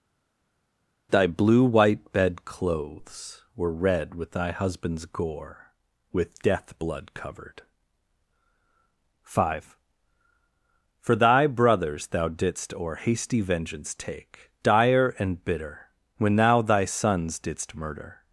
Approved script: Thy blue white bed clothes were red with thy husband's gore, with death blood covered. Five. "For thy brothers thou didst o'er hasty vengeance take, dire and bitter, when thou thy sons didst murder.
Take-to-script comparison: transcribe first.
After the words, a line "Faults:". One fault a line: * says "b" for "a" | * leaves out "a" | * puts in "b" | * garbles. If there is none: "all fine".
Thy blue white bed clothes were red with thy husband's gore, with death blood covered. Five. "For thy brothers thou didst o'er hasty vengeance take, dire and bitter, when thou thy sons didst murder.
Faults:
all fine